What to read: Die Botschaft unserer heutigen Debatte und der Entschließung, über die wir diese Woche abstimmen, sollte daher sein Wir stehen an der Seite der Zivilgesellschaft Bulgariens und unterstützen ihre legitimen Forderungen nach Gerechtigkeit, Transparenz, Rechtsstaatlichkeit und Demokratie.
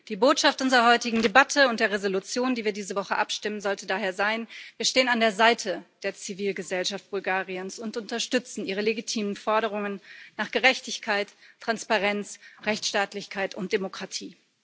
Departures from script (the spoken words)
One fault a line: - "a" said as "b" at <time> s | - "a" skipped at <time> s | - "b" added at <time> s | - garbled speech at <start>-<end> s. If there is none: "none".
none